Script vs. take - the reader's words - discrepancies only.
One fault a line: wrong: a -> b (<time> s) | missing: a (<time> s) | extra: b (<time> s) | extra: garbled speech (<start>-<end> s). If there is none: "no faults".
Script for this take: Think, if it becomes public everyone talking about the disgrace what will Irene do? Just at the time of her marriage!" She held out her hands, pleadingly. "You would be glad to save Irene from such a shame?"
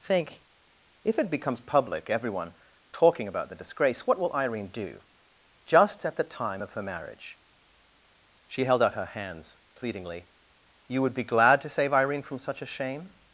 no faults